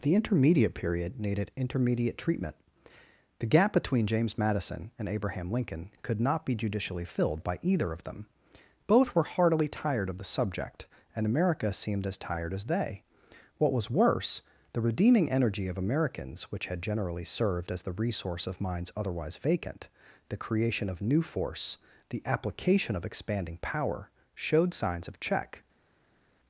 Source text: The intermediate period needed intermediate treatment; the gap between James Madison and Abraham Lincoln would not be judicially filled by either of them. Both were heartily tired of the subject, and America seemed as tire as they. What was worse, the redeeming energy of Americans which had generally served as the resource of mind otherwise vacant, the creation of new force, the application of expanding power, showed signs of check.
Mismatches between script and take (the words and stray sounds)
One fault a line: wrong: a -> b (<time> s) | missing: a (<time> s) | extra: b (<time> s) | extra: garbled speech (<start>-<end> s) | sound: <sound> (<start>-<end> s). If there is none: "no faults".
wrong: would -> could (6.0 s)
wrong: tire -> tired (12.2 s)
wrong: mind -> minds (18.6 s)